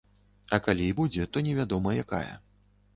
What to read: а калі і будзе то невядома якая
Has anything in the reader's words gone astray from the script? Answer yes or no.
no